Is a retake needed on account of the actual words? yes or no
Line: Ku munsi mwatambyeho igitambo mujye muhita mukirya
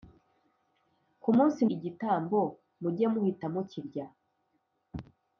yes